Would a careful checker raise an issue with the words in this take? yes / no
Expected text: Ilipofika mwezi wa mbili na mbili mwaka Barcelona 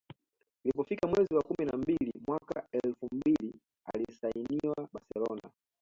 yes